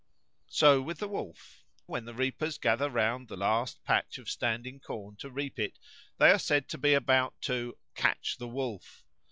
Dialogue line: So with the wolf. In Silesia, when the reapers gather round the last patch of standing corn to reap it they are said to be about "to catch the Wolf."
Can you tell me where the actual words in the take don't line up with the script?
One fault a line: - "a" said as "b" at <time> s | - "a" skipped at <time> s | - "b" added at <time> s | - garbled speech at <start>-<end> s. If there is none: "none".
- "In Silesia" skipped at 1.6 s